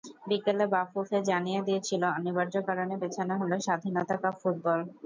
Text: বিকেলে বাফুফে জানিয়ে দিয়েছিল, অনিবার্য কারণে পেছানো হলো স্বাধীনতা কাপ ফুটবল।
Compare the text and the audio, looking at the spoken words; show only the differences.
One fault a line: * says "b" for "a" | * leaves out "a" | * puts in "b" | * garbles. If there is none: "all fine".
all fine